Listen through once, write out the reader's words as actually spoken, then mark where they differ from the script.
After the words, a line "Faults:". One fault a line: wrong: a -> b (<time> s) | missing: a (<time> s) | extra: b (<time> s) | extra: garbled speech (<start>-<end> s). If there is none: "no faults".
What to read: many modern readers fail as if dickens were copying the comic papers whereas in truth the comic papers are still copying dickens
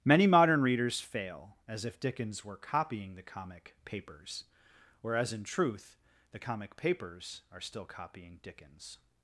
many modern readers fail as if dickens were copying the comic papers whereas in truth the comic papers are still copying dickens
Faults:
no faults